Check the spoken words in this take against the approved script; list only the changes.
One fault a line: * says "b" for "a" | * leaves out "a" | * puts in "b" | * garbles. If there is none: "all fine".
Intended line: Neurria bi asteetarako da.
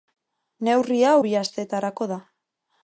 all fine